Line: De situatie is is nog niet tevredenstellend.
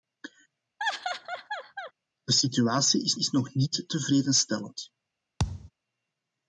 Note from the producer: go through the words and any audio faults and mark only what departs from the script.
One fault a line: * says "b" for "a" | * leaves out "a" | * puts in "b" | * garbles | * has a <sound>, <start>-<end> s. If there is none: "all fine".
* has a laugh, 0.8-1.9 s
* has a thud, 5.4-5.7 s